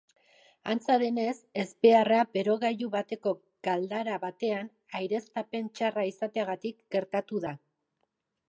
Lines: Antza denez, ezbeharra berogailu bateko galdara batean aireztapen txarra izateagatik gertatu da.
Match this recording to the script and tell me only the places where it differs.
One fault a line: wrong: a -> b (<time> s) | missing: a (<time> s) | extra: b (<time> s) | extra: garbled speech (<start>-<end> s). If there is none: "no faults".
no faults